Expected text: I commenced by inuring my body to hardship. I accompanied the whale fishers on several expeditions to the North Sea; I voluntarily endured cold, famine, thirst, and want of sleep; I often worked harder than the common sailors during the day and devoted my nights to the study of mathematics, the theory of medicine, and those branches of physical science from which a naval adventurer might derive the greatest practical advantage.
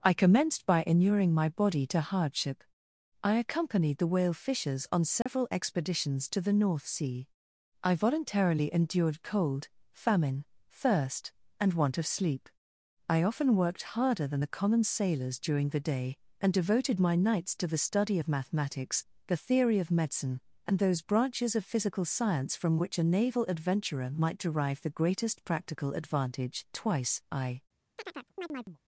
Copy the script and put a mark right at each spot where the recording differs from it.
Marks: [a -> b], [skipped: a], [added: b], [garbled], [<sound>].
I commenced by inuring my body to hardship. I accompanied the whale fishers on several [dropout] expeditions to the North Sea; I voluntarily endured cold, famine, thirst, and want of sleep; I often worked harder than the common sailors during the day and devoted my nights to the study of mathematics, the theory of medicine, and those branches of physical science from which a naval adventurer might derive the greatest practical advantage. [added: Twice I] [chirp]